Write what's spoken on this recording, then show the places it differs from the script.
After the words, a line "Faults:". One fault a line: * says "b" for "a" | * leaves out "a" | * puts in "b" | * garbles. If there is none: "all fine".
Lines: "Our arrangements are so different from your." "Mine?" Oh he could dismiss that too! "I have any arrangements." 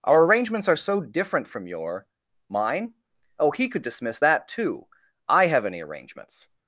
"Our arrangements are so different from your." "Mine?" Oh he could dismiss that too! "I have any arrangements."
Faults:
all fine